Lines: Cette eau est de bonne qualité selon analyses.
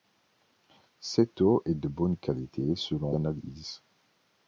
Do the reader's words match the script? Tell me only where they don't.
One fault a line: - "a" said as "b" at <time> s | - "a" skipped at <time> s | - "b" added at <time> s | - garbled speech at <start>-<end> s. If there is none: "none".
none